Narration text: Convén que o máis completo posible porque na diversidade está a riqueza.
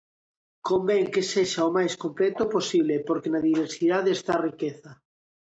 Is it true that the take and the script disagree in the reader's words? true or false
true